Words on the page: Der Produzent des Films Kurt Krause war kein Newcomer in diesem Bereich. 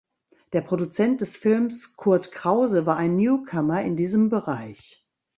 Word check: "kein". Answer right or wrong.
wrong